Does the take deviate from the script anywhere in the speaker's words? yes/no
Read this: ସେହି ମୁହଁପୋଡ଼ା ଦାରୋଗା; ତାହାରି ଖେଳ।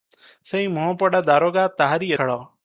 no